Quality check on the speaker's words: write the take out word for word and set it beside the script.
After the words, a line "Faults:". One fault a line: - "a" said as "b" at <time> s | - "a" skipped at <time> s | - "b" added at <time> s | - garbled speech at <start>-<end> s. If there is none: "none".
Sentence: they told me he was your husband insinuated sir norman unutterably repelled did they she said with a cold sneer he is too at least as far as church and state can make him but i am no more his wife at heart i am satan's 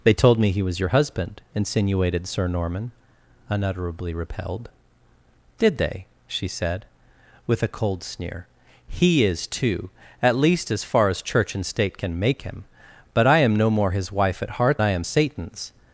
they told me he was your husband insinuated sir norman unutterably repelled did they she said with a cold sneer he is too at least as far as church and state can make him but i am no more his wife at heart i am satan's
Faults:
none